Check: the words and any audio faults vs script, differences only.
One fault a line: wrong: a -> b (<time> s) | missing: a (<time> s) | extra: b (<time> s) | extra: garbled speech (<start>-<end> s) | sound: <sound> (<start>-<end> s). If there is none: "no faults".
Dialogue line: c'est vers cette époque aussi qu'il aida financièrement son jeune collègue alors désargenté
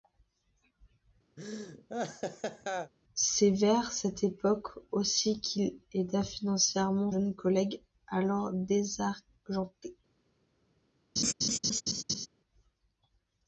sound: laugh (1.4-2.9 s)
missing: son (7.1 s)
sound: laugh (11.2-12.3 s)